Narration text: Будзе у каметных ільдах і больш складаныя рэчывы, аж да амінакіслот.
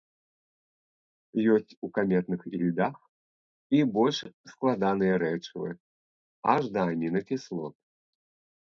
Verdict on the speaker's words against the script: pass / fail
fail